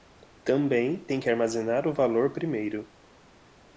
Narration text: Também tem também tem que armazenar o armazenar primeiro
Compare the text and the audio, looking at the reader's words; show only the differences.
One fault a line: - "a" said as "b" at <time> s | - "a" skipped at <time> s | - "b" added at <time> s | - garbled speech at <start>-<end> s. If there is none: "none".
- "também tem" skipped at 1.2 s
- "armazenar" said as "valor" at 1.9 s